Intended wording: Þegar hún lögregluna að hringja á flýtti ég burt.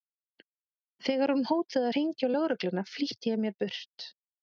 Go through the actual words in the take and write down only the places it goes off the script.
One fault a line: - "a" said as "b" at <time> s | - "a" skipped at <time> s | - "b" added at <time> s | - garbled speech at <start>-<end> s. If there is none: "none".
- "lögregluna" said as "hótaði" at 1.5 s
- "lögregluna" added at 2.4 s
- "mér" added at 3.5 s